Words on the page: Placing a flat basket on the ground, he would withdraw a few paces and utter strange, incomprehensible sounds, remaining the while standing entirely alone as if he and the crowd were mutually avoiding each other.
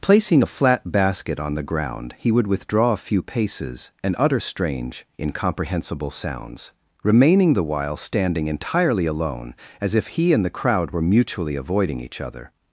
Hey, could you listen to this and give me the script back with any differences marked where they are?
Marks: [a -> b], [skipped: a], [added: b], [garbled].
Placing a flat basket on the ground, he would withdraw a few paces and utter strange, incomprehensible sounds, remaining the while standing entirely alone as if he and the crowd were mutually avoiding each other.